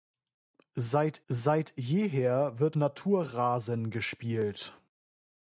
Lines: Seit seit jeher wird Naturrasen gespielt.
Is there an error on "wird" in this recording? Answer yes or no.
no